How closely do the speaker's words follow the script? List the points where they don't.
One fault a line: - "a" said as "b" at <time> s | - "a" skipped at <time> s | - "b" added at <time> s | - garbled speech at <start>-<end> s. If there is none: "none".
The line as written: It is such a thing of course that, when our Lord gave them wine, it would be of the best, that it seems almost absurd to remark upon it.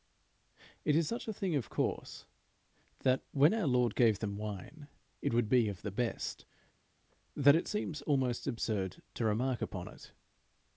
none